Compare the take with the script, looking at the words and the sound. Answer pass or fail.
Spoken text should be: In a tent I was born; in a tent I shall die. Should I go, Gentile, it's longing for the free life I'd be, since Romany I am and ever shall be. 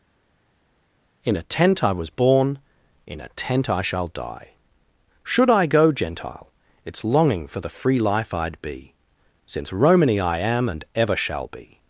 pass